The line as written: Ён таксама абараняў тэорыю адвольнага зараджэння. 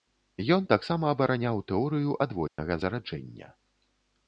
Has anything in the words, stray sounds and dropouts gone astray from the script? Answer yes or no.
yes